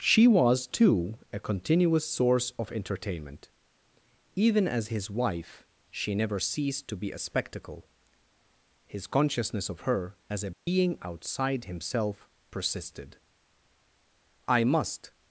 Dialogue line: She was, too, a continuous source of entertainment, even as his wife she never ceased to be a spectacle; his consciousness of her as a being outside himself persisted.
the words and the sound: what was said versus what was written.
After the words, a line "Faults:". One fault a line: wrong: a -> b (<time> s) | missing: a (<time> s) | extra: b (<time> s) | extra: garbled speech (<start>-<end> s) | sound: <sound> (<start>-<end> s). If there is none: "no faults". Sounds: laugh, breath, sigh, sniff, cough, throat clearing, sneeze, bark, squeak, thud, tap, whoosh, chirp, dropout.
She was, too, a continuous source of entertainment, even as his wife she never ceased to be a spectacle; his consciousness of her as a being outside himself persisted. "I must
Faults:
sound: dropout (10.5-10.7 s)
extra: I must (14.5 s)